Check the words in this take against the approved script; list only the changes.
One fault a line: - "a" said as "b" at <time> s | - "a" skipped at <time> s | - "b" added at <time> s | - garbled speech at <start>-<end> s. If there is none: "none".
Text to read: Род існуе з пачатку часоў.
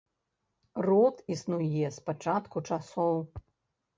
none